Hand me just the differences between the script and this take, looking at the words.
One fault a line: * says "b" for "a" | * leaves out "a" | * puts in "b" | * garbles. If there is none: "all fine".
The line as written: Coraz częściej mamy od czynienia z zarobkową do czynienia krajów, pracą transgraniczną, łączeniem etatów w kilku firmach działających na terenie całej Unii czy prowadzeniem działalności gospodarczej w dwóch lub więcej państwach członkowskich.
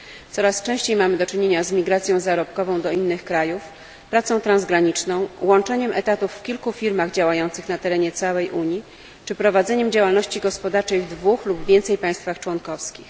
* says "do" for "od"
* puts in "migracją"
* says "innych" for "czynienia"